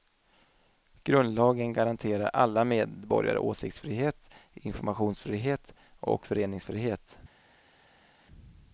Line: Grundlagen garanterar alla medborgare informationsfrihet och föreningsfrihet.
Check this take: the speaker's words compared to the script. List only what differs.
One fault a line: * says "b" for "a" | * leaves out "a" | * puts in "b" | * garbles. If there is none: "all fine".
* puts in "åsiktsfrihet"